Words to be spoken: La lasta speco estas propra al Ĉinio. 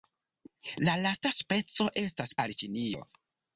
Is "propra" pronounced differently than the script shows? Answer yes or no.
yes